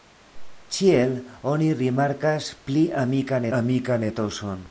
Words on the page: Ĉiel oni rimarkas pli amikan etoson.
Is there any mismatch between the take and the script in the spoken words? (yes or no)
yes